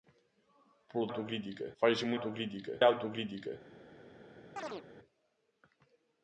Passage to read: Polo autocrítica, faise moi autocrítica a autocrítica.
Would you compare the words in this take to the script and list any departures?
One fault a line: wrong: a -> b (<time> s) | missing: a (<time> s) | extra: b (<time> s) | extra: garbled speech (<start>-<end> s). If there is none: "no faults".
no faults